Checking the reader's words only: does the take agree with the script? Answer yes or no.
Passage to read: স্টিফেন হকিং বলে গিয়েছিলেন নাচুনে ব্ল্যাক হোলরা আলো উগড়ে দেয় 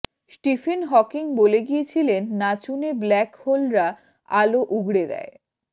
yes